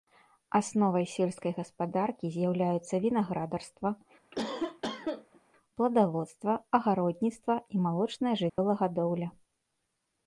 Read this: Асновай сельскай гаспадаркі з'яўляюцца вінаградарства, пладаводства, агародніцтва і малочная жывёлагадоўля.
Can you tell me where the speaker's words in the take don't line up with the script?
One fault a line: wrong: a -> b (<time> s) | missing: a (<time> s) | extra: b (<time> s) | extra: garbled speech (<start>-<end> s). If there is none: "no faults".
no faults